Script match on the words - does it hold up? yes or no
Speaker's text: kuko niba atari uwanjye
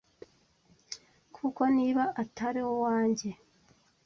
yes